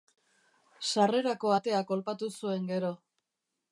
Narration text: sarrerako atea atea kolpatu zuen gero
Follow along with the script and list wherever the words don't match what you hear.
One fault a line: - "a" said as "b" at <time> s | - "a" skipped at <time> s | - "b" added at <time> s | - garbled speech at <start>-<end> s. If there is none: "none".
- "atea" skipped at 1.8 s